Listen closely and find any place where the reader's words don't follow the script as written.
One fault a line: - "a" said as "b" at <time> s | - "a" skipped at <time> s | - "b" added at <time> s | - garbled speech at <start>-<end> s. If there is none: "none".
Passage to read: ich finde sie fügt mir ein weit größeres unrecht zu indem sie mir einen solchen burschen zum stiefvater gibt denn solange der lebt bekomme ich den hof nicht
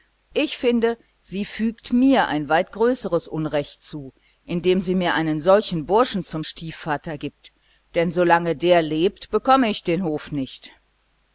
none